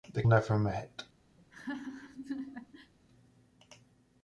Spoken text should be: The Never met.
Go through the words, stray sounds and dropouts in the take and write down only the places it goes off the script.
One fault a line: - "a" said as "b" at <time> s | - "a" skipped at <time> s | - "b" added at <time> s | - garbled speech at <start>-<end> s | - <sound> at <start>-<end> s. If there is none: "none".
- laugh at 1.4-2.9 s